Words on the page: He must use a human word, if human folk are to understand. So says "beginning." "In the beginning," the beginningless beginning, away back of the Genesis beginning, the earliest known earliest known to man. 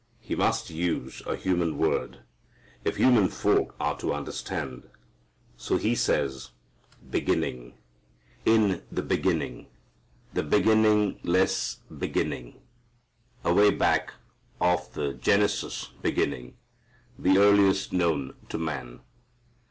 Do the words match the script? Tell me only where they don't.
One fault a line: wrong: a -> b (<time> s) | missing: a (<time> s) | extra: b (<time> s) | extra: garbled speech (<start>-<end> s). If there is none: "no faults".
extra: he (5.8 s)
missing: earliest known (18.3 s)